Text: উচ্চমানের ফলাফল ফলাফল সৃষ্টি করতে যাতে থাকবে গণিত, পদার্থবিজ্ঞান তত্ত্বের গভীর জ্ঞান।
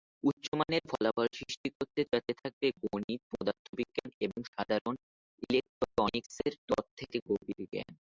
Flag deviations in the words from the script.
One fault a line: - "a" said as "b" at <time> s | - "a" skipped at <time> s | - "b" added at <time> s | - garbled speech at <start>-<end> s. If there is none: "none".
- "ফলাফল" skipped at 1.3 s
- "এবং সাধারণ ইলেকট্রনিক্সের" added at 4.2 s